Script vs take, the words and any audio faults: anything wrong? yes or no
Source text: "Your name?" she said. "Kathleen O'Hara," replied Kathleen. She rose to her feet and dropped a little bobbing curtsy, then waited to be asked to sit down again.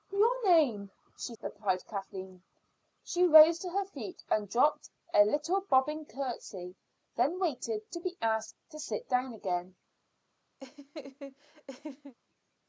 yes